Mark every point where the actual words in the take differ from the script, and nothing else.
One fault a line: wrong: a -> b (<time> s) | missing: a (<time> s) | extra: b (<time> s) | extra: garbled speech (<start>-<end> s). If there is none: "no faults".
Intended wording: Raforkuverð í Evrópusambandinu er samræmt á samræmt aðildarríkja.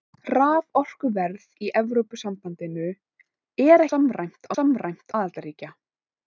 no faults